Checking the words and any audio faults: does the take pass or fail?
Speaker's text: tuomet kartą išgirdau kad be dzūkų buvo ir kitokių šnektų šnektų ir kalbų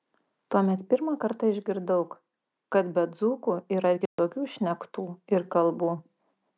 fail